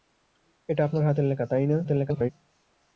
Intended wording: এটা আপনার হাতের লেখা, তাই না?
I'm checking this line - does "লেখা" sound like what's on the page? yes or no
yes